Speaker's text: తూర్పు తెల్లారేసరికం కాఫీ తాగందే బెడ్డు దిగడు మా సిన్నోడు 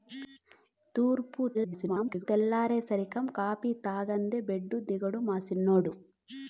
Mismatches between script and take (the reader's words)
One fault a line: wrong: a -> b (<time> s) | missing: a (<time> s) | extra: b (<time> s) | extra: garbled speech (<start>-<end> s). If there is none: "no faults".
extra: garbled speech (1.5-2.3 s)